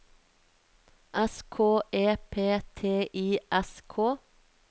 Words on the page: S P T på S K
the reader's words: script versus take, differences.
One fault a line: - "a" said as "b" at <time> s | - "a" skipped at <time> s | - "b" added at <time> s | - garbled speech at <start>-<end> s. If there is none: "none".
- "K E" added at 1.4 s
- "på" said as "I" at 3.1 s